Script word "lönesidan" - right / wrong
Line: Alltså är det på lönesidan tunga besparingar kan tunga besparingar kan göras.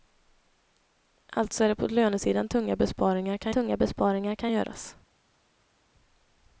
right